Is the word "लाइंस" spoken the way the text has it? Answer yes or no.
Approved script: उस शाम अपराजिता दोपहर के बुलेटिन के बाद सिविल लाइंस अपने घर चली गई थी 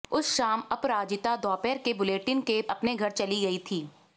no